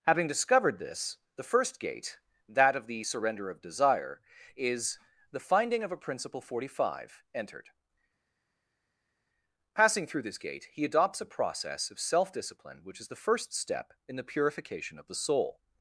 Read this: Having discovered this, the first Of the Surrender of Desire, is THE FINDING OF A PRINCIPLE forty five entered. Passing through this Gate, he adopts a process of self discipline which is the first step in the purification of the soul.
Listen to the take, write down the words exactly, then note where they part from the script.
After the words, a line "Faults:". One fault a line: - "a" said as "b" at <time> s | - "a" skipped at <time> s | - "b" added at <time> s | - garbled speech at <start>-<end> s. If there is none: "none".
Having discovered this, the first Gate, that of the Surrender of Desire, is THE FINDING OF A PRINCIPLE forty five entered. Passing through this Gate, he adopts a process of self discipline which is the first step in the purification of the soul.
Faults:
- "Gate that" added at 1.8 s